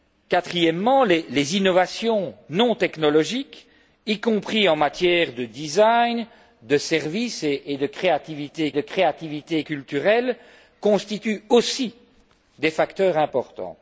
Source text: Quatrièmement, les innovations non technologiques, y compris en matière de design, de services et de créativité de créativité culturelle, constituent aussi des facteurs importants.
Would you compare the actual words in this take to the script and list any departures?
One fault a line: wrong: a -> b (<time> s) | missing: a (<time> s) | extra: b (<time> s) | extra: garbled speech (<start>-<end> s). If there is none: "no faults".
no faults